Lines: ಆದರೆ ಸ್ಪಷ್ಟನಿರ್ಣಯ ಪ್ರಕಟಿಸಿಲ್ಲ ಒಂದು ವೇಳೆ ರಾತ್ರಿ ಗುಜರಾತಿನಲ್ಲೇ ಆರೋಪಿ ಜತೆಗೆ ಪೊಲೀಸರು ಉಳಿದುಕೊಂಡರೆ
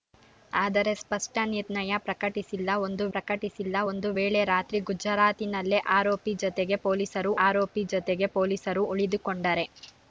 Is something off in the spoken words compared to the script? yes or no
yes